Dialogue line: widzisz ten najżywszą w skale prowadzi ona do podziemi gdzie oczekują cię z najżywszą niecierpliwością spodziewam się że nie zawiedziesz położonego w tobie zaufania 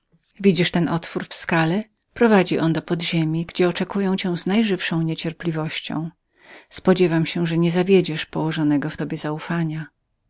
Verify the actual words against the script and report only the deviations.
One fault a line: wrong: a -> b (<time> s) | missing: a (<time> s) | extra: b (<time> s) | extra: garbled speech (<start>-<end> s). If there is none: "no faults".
wrong: najżywszą -> otwór (0.9 s)
wrong: ona -> on (2.6 s)